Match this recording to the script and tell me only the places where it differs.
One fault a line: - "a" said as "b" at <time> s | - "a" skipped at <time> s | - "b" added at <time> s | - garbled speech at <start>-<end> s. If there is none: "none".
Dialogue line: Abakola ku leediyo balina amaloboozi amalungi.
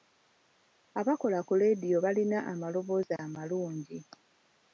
none